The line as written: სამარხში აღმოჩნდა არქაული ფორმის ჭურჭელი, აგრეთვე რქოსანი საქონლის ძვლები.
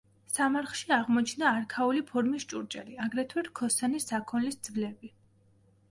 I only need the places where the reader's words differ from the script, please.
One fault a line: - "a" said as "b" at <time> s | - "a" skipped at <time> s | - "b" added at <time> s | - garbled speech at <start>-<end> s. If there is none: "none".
none